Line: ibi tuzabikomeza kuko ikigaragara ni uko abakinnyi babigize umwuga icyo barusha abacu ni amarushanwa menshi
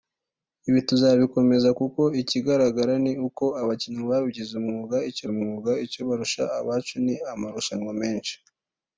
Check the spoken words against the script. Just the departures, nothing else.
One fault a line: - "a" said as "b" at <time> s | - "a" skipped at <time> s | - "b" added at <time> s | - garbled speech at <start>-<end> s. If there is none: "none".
- "umwuga icyo" added at 5.3 s